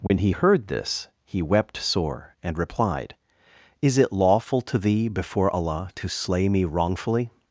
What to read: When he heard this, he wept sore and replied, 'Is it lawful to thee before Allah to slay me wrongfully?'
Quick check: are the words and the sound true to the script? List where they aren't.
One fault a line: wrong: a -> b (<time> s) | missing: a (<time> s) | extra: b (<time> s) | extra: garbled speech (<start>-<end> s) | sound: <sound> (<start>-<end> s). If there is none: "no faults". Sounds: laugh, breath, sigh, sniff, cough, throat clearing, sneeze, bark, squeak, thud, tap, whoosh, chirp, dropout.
sound: dropout (0.1-0.1 s)